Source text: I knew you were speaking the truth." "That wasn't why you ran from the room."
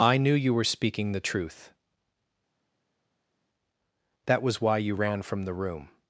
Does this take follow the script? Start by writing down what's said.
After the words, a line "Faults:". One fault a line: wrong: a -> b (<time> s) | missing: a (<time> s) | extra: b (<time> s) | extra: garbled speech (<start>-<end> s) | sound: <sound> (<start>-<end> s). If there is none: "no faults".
I knew you were speaking the truth." "That was why you ran from the room."
Faults:
wrong: wasn't -> was (4.4 s)